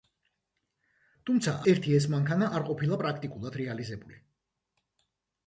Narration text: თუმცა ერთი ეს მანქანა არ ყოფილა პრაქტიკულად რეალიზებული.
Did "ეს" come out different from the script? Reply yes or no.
no